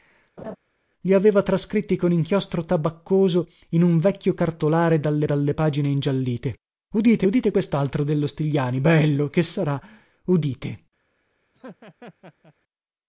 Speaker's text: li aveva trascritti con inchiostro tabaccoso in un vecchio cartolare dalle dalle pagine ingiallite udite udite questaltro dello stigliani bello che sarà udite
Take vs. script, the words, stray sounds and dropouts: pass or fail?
fail